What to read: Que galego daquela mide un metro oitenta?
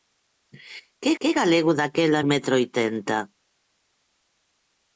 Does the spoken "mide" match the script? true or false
false